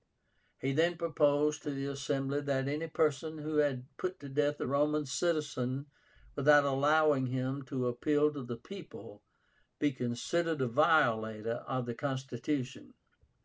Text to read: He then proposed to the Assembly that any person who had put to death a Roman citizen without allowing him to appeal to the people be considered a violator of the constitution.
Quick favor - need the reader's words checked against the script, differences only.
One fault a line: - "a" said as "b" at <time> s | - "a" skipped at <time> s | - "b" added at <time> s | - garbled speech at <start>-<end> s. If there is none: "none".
none